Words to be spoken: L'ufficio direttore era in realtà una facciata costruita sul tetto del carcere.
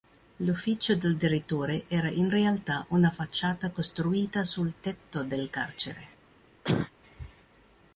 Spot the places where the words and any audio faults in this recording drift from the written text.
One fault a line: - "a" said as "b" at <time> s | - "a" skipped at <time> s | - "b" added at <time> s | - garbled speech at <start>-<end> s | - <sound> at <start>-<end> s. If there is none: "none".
- "del" added at 0.9 s
- cough at 6.6-6.9 s